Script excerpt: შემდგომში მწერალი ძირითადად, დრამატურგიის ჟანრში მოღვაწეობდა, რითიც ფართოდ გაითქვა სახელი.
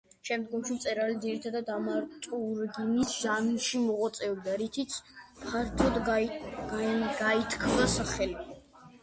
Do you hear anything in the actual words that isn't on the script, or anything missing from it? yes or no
no